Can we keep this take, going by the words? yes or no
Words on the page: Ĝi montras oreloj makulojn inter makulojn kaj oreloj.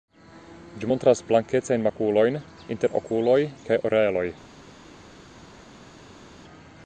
no